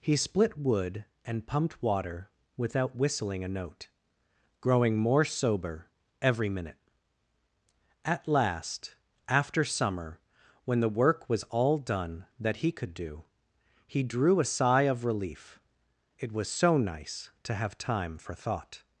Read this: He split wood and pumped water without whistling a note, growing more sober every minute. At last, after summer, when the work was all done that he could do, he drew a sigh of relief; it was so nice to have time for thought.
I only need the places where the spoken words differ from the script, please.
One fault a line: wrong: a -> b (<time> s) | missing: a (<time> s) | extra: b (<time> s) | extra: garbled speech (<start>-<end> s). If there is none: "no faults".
no faults